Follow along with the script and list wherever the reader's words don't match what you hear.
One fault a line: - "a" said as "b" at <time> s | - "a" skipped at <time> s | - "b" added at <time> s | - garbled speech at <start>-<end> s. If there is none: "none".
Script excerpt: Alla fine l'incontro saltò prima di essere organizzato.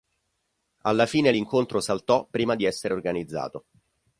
none